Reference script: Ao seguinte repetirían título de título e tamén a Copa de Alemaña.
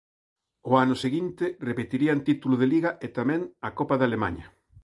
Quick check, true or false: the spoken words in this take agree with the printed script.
false